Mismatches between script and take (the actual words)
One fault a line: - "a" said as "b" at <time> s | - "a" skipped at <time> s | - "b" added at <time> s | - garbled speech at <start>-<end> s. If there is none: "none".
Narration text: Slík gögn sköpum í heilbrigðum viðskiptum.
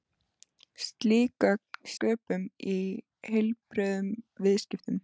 none